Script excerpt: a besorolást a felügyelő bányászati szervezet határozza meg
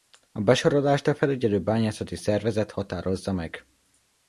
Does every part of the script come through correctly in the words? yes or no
yes